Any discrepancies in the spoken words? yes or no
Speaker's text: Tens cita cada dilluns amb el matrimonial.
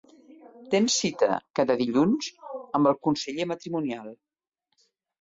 yes